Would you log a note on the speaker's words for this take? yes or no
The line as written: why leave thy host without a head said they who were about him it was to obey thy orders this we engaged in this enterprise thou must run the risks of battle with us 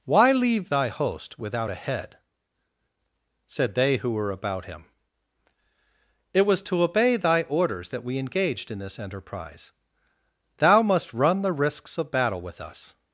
yes